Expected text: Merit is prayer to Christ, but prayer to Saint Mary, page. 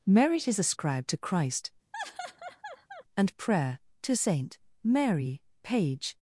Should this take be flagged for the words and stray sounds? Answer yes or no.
yes